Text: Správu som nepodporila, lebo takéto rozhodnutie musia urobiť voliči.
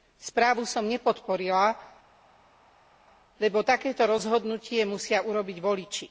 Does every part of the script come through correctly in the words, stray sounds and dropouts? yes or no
yes